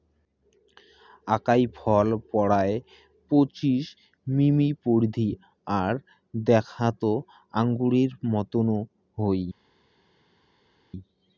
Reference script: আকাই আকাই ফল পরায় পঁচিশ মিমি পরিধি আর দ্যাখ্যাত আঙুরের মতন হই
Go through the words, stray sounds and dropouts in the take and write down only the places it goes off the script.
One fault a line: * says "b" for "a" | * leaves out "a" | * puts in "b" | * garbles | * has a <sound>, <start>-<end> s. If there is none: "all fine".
* leaves out "আকাই"